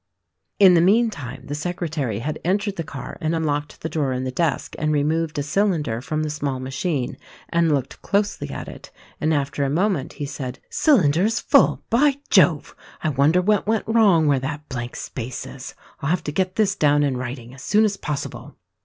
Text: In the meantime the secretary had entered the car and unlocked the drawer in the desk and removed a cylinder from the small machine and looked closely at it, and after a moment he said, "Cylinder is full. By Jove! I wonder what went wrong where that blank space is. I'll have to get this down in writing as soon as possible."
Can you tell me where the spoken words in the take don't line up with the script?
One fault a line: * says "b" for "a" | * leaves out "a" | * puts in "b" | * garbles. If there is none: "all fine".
all fine